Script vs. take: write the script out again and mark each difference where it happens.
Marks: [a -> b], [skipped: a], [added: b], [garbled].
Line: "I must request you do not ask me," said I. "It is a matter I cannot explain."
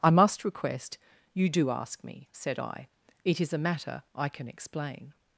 "I must request you do [skipped: not] ask me," said I. "It is a matter I [cannot -> can] explain."